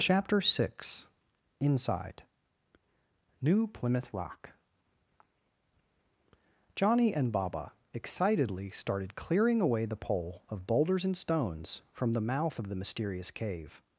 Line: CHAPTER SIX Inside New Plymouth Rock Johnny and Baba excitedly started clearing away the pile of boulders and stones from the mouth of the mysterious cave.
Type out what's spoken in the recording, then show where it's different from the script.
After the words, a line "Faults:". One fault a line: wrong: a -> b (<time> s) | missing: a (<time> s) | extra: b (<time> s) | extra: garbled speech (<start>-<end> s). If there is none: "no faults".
CHAPTER SIX Inside New Plymouth Rock Johnny and Baba excitedly started clearing away the pole of boulders and stones from the mouth of the mysterious cave.
Faults:
wrong: pile -> pole (10.0 s)